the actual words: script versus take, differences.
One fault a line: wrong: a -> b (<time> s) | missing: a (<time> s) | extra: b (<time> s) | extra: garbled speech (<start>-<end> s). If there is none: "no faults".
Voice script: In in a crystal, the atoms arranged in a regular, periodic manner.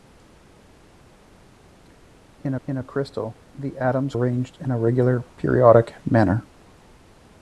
no faults